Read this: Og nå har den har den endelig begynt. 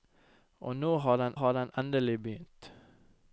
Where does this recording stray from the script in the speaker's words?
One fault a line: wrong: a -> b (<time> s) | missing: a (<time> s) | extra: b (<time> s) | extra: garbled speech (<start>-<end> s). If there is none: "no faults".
no faults